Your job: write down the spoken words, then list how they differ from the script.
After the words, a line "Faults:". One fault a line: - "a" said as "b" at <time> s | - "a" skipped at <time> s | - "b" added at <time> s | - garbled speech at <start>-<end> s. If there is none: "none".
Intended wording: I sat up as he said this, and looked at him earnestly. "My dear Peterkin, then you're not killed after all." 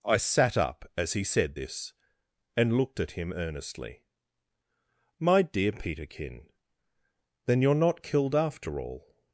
I sat up as he said this, and looked at him earnestly. "My dear Peterkin, then you're not killed after all."
Faults:
none